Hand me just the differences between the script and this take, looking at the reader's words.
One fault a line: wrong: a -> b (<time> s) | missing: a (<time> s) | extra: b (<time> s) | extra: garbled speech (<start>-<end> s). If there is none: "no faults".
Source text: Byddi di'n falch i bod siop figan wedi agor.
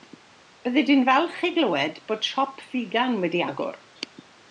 extra: glywed (1.6 s)